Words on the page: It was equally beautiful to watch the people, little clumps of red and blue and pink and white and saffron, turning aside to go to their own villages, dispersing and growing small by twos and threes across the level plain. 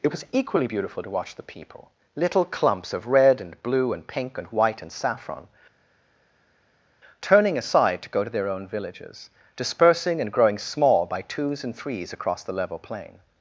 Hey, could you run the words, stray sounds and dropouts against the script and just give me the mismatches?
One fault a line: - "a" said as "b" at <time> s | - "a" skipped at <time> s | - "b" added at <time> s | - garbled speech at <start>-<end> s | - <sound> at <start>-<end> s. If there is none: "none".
none